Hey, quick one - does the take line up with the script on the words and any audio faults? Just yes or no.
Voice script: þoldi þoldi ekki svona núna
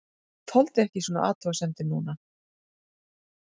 no